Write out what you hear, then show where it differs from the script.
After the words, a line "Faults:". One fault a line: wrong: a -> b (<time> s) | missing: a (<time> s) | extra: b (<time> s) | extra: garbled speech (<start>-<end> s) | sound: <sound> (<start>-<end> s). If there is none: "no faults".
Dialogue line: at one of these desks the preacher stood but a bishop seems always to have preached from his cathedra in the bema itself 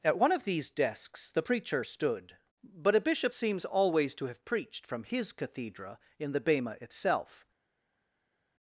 at one of these desks the preacher stood but a bishop seems always to have preached from his cathedra in the bema itself
Faults:
no faults